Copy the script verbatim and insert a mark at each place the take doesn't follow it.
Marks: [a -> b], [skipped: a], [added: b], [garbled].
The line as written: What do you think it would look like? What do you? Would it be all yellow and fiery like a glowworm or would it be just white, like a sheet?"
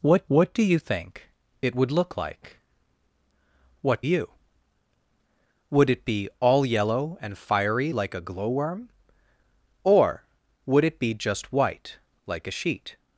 What [added: what] do you think it would look like? What [skipped: do] you? Would it be all yellow and fiery like a glowworm or would it be just white, like a sheet?"